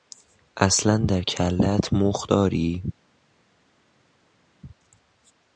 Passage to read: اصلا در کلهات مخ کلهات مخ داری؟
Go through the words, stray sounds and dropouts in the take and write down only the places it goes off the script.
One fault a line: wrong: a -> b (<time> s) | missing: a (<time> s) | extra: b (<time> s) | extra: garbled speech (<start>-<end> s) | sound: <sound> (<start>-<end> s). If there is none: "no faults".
missing: کلهات مخ (2.3 s)